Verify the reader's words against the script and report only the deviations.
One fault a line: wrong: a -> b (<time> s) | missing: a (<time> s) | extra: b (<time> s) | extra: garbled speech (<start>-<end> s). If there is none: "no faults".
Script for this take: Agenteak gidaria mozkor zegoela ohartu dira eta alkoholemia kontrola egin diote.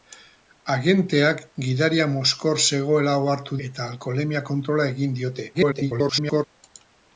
missing: dira (3.6 s)
extra: garbled speech (5.5-6.4 s)